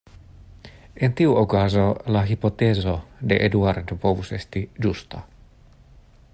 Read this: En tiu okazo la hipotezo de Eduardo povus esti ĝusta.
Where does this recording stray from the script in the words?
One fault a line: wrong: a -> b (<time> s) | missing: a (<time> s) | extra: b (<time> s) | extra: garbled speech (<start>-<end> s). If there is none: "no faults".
no faults